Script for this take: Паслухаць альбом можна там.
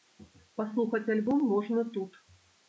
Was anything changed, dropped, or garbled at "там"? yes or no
yes